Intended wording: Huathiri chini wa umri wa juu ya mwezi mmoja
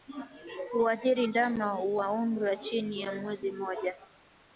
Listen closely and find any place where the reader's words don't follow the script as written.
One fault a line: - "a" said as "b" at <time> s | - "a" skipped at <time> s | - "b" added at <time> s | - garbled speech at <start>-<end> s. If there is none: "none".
- "chini" said as "ndama" at 1.2 s
- "juu" said as "chini" at 2.6 s